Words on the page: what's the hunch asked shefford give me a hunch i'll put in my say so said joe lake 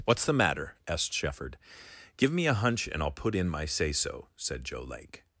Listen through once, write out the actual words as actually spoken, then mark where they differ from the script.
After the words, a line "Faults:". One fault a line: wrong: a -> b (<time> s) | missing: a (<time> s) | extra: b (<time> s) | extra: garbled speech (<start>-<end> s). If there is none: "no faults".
what's the matter asked shefford give me a hunch and i'll put in my say so said joe lake
Faults:
wrong: hunch -> matter (0.3 s)
extra: and (2.9 s)